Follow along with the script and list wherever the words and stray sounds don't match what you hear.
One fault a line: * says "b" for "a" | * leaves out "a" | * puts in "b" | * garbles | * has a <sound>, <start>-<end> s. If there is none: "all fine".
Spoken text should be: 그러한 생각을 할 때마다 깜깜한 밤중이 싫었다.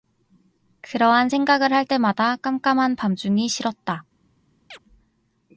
* has a chirp, 4.7-4.8 s